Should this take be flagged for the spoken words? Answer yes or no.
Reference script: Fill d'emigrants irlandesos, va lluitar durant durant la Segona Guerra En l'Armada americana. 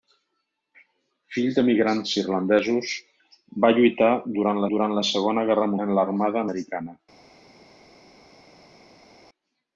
no